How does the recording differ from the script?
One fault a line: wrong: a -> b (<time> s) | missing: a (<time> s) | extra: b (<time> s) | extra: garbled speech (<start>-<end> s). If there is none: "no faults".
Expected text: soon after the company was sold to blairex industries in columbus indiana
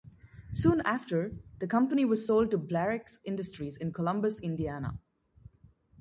no faults